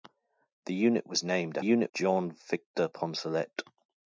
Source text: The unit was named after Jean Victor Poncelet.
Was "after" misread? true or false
true